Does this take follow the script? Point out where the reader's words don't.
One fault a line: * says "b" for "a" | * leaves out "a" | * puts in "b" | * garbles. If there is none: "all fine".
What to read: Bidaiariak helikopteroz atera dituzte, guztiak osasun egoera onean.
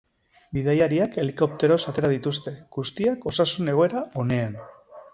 all fine